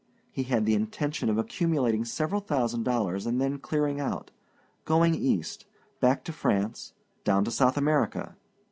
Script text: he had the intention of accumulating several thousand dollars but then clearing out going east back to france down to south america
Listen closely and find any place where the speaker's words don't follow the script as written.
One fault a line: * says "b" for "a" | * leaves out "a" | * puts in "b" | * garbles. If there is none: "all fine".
* says "and" for "but"